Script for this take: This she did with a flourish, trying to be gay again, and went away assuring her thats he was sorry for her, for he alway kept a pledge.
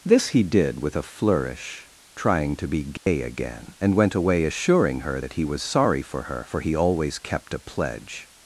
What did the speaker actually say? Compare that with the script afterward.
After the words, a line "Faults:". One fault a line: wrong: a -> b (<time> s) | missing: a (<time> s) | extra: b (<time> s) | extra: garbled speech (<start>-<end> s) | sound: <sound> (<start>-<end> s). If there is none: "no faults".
This he did with a flourish, trying to be gay again, and went away assuring her that he was sorry for her, for he always kept a pledge.
Faults:
wrong: she -> he (0.3 s)
sound: dropout (3.0-3.1 s)
wrong: thats -> that (5.2 s)
wrong: alway -> always (6.7 s)